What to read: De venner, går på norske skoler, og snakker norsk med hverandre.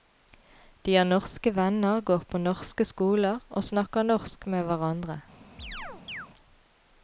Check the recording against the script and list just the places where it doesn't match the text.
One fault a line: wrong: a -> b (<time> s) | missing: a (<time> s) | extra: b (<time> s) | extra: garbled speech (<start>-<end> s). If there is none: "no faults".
extra: har norske (0.9 s)